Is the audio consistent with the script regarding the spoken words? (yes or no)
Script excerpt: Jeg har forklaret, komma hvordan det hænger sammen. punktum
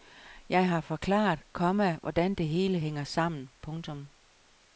no